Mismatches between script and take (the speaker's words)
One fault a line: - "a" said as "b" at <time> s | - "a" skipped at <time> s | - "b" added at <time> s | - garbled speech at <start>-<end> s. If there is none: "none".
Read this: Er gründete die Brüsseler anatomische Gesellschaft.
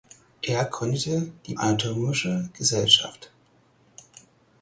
- "Brüsseler" skipped at 1.5 s